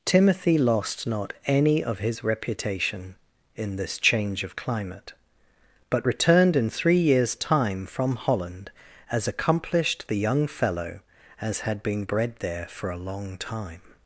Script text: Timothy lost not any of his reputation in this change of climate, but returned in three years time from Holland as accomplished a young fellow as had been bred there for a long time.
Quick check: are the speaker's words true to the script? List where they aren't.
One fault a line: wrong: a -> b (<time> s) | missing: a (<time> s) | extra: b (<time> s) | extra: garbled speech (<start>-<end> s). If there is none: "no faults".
wrong: a -> the (10.1 s)